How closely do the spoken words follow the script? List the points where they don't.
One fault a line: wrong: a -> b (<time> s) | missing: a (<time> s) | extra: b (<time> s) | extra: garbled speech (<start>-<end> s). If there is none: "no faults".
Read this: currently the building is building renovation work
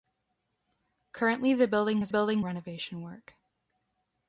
no faults